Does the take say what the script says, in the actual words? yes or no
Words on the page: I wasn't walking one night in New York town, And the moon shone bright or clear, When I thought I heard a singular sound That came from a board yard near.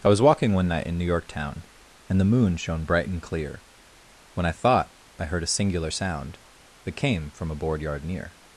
no